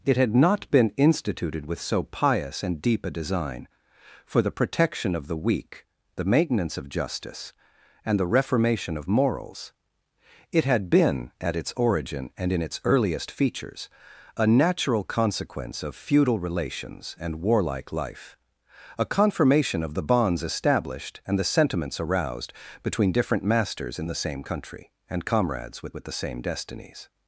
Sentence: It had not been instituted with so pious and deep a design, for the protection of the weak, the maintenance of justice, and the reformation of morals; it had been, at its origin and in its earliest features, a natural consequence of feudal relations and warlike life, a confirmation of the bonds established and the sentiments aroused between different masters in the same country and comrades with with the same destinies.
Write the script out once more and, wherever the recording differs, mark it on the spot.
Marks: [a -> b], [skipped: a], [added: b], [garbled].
It had not been instituted with so pious and deep a design, for the protection of the weak, the maintenance of justice, and the reformation of morals; it had been, at its origin and in its earliest features, a natural consequence of feudal relations and warlike life, a confirmation of the bonds established and the sentiments aroused between different masters in the same country and comrades with with the same destinies.